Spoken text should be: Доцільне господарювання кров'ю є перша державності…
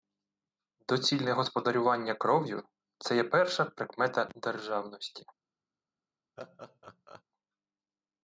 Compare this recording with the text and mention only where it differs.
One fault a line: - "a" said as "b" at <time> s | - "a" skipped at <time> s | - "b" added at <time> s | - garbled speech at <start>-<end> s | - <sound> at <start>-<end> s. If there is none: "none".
- "це" added at 3.0 s
- "прикмета" added at 3.6 s
- laugh at 6.4-7.2 s